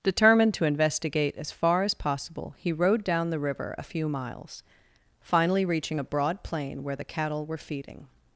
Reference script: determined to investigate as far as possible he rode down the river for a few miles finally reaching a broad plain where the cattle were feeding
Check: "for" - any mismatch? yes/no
yes